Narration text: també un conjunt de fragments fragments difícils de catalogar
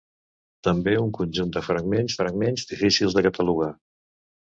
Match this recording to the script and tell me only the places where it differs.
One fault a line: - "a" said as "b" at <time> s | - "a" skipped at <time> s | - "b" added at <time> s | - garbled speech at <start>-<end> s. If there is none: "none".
none